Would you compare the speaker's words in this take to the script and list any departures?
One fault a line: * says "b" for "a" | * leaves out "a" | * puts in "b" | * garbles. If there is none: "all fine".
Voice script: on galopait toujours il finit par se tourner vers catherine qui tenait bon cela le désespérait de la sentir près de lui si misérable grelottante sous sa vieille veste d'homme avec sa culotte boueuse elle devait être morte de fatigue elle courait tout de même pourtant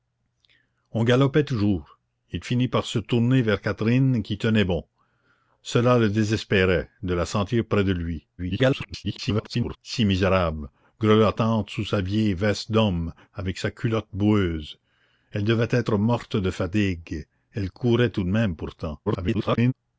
* garbles
* garbles